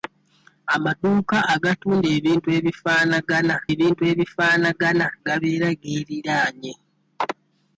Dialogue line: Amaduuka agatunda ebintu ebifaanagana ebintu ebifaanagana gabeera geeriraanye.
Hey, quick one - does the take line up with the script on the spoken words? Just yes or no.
yes